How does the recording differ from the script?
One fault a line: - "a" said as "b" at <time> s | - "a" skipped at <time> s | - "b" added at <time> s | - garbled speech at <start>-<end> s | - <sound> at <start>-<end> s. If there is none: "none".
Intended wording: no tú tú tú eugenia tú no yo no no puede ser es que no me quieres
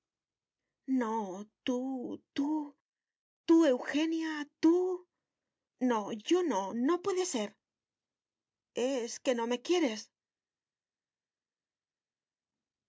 none